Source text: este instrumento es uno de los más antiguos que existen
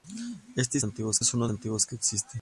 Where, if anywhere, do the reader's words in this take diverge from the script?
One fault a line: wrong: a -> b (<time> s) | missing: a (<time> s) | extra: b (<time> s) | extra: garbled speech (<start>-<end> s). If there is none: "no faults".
wrong: instrumento -> antiguos (0.8 s)
missing: de los más (1.5 s)